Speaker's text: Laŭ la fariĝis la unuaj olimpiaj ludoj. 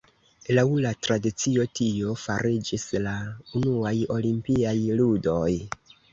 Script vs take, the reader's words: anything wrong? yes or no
yes